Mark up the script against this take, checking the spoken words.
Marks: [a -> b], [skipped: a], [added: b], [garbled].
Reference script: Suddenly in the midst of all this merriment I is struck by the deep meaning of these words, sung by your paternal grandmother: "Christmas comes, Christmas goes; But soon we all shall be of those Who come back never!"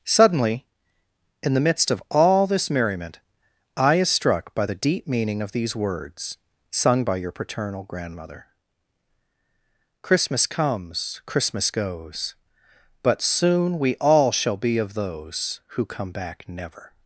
Suddenly in the midst of all this merriment I is struck by the deep meaning of these words, sung by your paternal grandmother: "Christmas comes, Christmas goes; But soon we all shall be of those Who come back never!"